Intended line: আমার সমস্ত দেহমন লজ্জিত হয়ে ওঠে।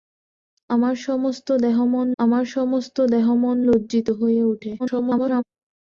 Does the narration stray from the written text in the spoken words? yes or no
yes